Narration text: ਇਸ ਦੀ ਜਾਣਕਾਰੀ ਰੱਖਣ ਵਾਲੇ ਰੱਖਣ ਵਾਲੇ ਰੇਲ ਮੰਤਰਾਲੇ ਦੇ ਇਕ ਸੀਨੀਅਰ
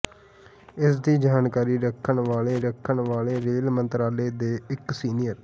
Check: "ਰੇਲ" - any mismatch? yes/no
no